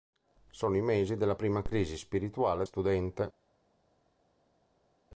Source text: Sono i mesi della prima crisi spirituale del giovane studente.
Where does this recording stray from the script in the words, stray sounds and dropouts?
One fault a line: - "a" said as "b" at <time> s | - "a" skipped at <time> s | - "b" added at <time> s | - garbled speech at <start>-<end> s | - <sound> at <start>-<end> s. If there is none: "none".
- "del giovane" skipped at 2.7 s